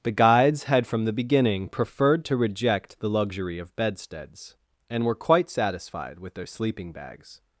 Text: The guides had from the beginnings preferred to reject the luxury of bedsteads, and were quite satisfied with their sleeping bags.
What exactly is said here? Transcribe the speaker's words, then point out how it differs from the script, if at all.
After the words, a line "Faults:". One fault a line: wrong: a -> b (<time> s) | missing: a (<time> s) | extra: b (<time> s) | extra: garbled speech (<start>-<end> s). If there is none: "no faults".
The guides had from the beginning preferred to reject the luxury of bedsteads, and were quite satisfied with their sleeping bags.
Faults:
wrong: beginnings -> beginning (1.1 s)